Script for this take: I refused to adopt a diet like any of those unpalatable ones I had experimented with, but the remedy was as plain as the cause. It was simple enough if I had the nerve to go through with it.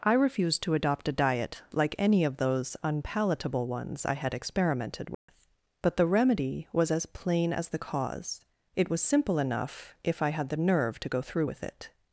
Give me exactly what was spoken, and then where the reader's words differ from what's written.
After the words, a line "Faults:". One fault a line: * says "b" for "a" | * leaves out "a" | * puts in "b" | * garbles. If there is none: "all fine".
I refused to adopt a diet like any of those unpalatable ones I had experimented with, but the remedy was as plain as the cause. It was simple enough if I had the nerve to go through with it.
Faults:
all fine